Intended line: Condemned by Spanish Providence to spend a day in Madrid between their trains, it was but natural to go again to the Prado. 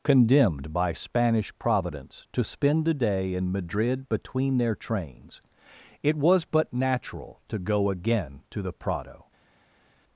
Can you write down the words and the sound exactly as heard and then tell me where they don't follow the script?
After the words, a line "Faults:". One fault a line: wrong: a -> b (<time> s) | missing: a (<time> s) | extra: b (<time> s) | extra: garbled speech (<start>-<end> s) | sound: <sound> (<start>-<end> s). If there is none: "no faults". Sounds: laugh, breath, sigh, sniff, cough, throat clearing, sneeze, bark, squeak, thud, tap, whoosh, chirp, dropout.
Condemned by Spanish Providence to spend a day in Madrid between their trains, it was but natural to go again to the Prado.
Faults:
no faults